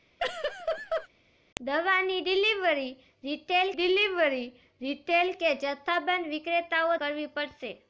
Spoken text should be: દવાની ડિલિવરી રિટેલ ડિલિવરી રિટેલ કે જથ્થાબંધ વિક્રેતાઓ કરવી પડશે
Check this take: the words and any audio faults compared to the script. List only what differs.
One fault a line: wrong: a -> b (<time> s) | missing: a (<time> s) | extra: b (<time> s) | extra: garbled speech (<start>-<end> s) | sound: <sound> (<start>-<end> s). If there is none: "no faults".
sound: laugh (0.2-1.1 s)